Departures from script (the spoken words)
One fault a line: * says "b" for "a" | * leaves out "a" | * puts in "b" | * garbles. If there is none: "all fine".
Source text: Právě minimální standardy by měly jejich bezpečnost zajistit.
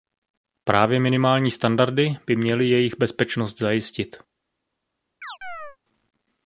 all fine